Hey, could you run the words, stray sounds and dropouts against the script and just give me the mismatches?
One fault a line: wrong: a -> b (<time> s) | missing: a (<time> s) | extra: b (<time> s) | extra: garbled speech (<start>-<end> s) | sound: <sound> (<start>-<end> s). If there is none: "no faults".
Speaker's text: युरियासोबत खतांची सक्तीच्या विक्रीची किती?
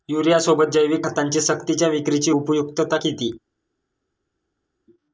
extra: जैविक (0.7 s)
extra: उपयुक्तता (2.3 s)